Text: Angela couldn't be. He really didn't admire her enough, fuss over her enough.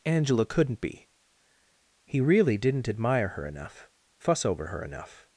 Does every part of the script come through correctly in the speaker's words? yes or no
yes